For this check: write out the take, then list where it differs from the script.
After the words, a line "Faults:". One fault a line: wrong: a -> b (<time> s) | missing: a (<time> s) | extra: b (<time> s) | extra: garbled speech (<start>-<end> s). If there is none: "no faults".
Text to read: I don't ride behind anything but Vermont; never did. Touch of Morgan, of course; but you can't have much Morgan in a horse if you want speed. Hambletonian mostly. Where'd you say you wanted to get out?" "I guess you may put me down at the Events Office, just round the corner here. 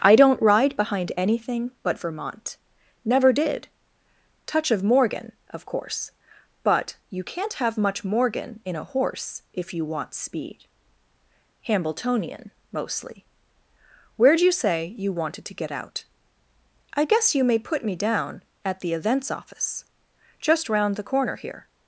I don't ride behind anything but Vermont; never did. Touch of Morgan, of course; but you can't have much Morgan in a horse if you want speed. Hambletonian mostly. Where'd you say you wanted to get out?" "I guess you may put me down at the Events Office, just round the corner here.
Faults:
no faults